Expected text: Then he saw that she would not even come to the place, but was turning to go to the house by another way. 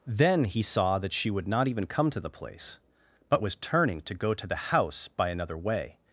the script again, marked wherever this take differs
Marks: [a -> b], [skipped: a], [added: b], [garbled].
Then he saw that she would not even come to the place, but was turning to go to the house by another way.